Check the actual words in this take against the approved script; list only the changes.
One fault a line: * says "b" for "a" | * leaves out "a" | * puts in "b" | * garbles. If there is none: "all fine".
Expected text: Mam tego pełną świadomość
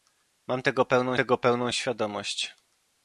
* puts in "tego pełną"